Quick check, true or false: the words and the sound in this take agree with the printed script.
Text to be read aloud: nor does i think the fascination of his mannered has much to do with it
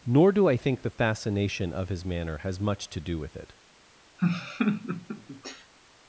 false